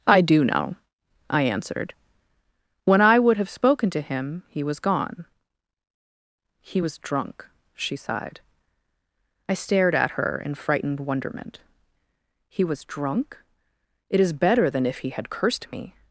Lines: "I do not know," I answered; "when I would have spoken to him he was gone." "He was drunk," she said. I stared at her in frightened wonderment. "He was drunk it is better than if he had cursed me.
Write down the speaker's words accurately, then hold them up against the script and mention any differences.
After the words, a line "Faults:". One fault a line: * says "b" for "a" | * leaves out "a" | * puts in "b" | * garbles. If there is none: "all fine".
"I do know," I answered; "when I would have spoken to him he was gone." "He was drunk," she sighed. I stared at her in frightened wonderment. "He was drunk it is better than if he had cursed me.
Faults:
* leaves out "not"
* says "sighed" for "said"